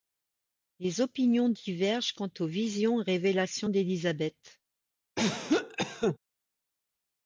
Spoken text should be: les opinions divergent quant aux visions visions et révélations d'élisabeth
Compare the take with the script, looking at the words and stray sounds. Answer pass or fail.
fail